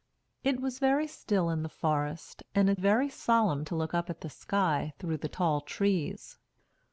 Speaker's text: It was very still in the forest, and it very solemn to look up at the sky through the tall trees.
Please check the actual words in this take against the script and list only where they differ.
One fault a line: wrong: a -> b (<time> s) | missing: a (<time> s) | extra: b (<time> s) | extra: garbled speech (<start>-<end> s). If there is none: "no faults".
no faults